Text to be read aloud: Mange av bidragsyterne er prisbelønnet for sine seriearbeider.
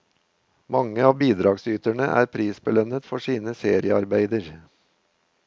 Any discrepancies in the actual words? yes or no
no